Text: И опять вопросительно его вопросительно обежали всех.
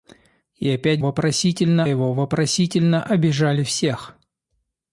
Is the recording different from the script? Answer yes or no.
no